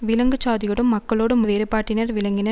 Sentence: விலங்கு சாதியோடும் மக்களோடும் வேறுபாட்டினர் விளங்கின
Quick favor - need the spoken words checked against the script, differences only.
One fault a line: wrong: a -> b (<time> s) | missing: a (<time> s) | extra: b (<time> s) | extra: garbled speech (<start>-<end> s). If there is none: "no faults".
no faults